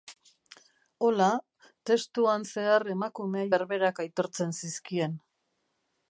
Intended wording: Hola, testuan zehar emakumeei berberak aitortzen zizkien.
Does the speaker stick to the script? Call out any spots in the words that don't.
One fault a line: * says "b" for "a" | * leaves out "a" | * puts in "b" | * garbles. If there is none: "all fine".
all fine